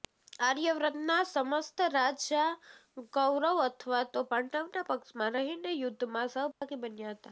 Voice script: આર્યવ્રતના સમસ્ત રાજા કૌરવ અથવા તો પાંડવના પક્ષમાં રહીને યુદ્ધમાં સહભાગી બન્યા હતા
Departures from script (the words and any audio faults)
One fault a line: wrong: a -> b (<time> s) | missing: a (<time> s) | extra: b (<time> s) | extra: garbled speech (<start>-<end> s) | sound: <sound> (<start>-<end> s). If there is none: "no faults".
sound: dropout (6.5-6.6 s)